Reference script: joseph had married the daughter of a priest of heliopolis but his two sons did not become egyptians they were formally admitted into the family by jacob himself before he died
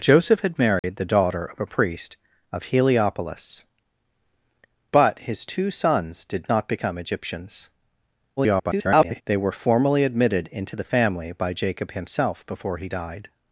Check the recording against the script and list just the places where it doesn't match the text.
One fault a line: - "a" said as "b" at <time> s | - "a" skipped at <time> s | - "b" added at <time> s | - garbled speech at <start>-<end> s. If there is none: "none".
- garbled speech at 8.4-9.2 s